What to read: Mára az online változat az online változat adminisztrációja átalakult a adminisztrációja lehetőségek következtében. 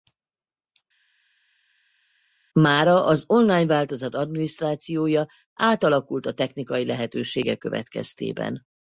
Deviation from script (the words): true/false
true